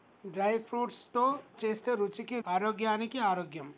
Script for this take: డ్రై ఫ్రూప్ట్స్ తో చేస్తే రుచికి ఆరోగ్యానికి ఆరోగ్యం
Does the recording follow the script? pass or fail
pass